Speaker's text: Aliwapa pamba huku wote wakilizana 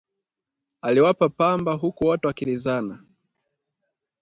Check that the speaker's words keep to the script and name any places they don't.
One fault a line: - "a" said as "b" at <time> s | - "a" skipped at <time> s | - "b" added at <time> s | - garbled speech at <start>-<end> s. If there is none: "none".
none